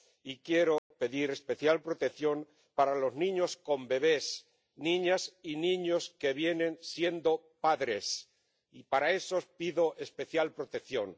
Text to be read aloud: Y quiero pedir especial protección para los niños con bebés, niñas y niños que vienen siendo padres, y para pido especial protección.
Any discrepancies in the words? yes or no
yes